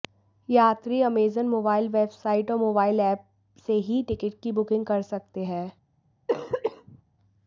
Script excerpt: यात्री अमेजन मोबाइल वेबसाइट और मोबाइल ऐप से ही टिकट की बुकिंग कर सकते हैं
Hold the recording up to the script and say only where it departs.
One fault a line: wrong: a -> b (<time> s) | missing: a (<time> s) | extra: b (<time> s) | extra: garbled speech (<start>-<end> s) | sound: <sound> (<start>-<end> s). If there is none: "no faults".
sound: cough (6.3-7.0 s)